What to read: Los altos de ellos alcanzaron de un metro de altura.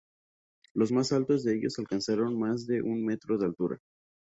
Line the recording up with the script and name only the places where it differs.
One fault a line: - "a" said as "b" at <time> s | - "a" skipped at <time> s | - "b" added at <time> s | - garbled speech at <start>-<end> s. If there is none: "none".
- "más" added at 0.9 s
- "más" added at 2.4 s